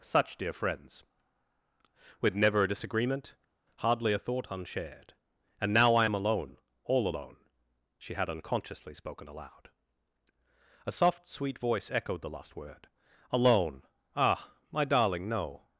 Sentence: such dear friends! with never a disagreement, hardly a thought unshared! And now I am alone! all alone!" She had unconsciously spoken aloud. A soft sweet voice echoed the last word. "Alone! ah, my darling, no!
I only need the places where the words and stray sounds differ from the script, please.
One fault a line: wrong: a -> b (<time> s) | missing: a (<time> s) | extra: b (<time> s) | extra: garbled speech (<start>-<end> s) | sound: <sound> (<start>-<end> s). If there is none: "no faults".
no faults